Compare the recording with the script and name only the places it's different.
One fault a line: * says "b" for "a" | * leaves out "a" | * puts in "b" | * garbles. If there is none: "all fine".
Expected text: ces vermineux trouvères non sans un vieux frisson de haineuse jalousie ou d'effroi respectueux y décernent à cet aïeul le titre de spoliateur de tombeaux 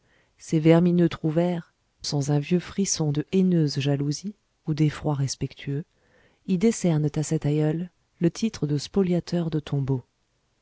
* leaves out "non"